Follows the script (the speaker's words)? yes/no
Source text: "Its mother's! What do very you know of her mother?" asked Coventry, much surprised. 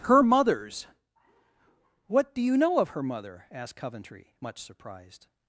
no